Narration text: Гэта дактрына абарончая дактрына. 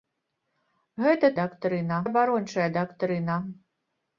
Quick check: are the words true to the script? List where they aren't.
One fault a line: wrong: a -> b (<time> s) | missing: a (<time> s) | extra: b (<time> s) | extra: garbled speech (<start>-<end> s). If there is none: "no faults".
no faults